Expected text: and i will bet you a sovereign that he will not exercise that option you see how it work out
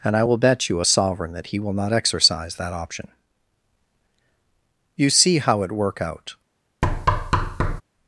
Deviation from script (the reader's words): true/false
false